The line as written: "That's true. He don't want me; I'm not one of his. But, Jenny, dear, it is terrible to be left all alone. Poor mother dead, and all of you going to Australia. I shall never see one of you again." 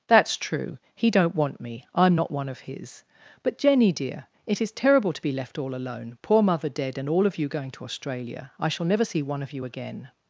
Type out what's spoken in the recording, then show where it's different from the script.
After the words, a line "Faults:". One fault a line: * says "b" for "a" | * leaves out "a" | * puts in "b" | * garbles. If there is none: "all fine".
"That's true. He don't want me; I'm not one of his. But, Jenny, dear, it is terrible to be left all alone. Poor mother dead, and all of you going to Australia. I shall never see one of you again."
Faults:
all fine